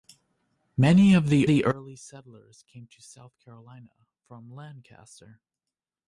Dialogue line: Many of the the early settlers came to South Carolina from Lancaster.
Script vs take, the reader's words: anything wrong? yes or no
no